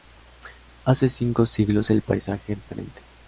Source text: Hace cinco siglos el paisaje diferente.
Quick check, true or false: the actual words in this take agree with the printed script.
true